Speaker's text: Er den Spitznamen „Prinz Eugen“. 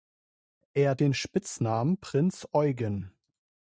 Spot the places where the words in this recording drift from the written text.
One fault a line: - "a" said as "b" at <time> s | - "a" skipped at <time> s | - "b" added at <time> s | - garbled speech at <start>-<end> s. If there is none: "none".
none